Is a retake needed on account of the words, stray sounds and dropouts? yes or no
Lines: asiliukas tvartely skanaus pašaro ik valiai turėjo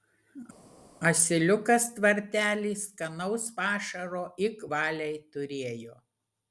no